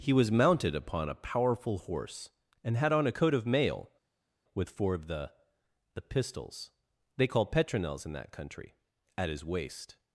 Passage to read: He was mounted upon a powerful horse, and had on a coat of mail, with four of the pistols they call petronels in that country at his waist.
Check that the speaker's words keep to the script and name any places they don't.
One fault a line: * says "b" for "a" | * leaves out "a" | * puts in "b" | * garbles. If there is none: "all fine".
* puts in "the"